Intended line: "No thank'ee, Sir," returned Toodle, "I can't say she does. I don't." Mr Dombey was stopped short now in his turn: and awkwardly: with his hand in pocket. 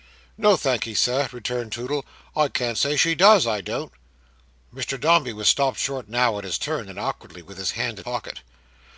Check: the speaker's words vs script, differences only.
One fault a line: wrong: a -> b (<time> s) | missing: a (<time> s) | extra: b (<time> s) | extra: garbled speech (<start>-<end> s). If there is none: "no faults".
no faults